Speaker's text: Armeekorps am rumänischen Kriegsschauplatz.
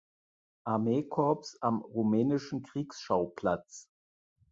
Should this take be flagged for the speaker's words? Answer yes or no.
no